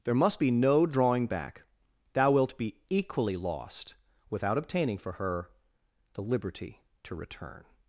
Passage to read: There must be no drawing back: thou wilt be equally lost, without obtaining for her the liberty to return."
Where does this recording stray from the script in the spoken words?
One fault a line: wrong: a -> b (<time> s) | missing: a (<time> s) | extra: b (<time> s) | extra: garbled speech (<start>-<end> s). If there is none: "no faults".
no faults